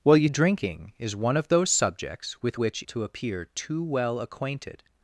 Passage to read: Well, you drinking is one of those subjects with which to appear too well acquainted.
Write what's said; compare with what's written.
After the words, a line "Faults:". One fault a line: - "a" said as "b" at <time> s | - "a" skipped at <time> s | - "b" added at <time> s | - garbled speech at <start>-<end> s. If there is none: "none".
Well, you drinking is one of those subjects with which to appear too well acquainted.
Faults:
none